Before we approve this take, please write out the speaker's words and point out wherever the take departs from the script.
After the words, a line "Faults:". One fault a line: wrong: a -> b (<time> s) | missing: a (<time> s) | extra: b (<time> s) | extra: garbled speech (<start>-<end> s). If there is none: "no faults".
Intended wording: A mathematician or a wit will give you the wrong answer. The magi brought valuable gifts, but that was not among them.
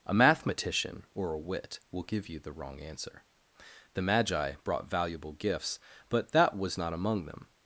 A mathematician or a wit will give you the wrong answer. The magi brought valuable gifts, but that was not among them.
Faults:
no faults